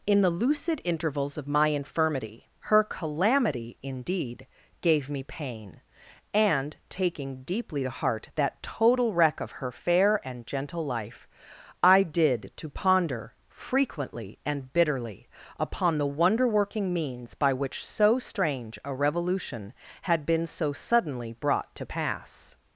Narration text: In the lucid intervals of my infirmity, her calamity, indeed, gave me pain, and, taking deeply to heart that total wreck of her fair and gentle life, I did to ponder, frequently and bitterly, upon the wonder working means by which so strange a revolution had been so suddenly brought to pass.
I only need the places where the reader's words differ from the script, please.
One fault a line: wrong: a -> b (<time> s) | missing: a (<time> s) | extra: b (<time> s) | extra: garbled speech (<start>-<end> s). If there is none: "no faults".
no faults